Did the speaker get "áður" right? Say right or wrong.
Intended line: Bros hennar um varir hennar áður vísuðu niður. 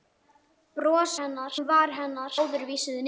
right